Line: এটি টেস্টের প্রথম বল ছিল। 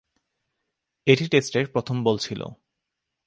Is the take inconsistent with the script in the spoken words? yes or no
no